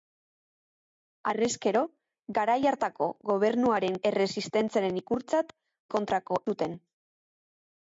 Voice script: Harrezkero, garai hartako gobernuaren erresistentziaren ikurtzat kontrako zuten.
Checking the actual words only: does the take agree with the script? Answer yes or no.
yes